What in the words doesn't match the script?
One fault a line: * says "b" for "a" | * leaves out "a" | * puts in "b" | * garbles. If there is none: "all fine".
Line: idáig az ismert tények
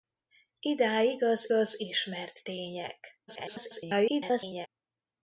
* puts in "az"
* garbles